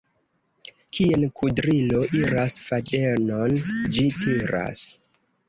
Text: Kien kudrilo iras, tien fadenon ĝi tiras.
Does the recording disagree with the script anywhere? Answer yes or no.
yes